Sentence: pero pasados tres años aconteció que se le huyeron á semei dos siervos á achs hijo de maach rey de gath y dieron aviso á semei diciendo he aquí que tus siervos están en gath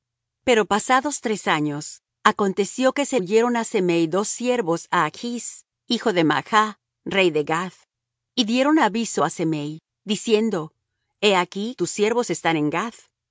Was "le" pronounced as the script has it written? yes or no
no